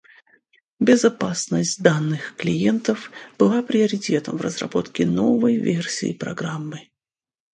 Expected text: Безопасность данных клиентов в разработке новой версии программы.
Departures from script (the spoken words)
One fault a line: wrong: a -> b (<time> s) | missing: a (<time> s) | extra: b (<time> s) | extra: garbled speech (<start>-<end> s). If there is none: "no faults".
extra: была приоритетом (3.4 s)